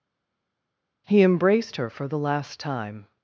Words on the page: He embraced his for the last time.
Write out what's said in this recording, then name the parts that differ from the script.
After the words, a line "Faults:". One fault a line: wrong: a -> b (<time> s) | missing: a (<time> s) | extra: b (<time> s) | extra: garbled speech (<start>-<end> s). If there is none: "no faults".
He embraced her for the last time.
Faults:
wrong: his -> her (1.7 s)